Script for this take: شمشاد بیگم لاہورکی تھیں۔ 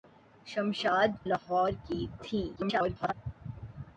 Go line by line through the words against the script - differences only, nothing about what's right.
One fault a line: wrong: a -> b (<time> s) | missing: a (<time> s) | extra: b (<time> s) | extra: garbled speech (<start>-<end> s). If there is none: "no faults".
missing: بیگم (1.1 s)
extra: garbled speech (2.6-3.1 s)